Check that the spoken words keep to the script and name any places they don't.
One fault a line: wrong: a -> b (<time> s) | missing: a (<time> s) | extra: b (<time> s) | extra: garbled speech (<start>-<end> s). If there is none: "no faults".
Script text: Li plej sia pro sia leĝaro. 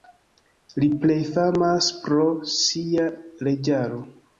wrong: sia -> famas (1.4 s)